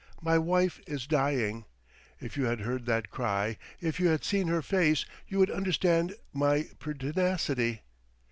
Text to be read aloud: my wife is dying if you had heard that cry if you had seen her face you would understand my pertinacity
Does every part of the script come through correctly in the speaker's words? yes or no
yes